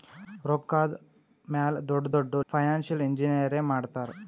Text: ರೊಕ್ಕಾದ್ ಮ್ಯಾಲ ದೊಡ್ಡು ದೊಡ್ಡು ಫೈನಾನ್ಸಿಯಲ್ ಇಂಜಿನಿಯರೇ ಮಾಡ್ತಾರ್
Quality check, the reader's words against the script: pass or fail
pass